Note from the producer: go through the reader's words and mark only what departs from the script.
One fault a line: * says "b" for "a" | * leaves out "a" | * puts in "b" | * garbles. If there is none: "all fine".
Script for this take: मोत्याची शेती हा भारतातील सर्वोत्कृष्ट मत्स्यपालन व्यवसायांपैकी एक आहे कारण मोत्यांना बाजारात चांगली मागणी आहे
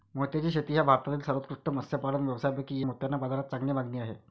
* leaves out "एक आहे कारण"